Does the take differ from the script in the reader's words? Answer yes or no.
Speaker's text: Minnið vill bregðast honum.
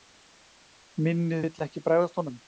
yes